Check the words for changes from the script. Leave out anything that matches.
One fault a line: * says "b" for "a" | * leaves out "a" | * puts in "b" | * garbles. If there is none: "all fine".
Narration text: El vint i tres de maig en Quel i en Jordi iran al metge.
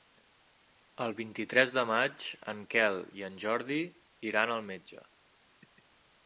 all fine